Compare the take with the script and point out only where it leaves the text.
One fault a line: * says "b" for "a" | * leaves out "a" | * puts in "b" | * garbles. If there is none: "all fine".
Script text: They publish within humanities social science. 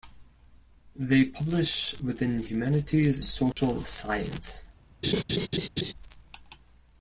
all fine